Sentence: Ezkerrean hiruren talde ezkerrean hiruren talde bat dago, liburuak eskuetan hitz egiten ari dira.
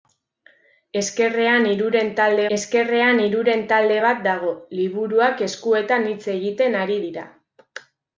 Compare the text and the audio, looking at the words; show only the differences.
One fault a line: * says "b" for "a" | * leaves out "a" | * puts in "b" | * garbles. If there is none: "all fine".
all fine